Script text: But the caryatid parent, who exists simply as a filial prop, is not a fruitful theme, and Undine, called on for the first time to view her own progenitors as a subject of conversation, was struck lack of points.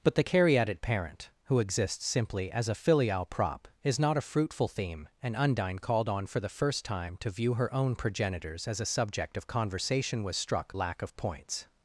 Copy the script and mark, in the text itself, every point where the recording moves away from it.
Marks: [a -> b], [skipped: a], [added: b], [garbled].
But the caryatid parent, who exists simply as a filial prop, is not a fruitful theme, and Undine, called on for the first time to view her own progenitors as a subject of conversation, was struck lack of points.